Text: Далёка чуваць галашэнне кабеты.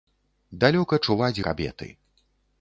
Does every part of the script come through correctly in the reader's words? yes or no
no